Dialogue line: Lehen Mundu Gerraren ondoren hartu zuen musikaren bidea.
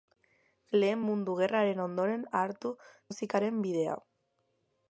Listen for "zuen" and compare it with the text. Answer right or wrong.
wrong